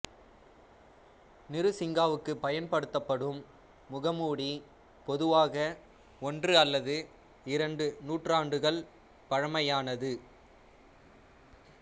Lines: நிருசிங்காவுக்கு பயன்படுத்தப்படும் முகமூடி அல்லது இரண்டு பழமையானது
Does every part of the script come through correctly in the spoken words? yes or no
no